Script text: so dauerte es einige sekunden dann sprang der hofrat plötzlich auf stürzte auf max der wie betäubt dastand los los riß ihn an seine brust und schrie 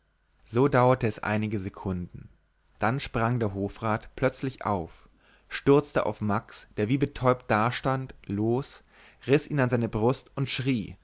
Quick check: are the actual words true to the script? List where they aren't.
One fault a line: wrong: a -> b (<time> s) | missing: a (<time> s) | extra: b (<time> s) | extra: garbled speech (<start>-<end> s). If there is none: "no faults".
missing: los (8.8 s)